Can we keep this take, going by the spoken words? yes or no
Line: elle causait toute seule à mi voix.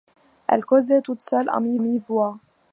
no